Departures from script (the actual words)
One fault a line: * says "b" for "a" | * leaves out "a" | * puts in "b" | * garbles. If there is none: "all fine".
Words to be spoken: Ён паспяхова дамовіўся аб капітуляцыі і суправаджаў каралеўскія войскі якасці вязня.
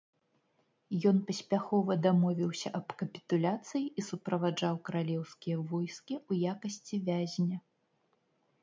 * puts in "ў"